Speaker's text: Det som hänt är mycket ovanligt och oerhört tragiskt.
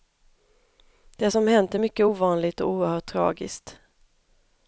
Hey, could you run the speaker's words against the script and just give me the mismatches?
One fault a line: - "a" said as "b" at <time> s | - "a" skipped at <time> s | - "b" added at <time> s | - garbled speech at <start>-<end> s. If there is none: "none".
none